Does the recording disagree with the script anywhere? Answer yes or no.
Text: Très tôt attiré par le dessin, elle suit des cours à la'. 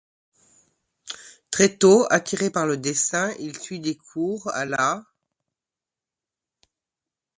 yes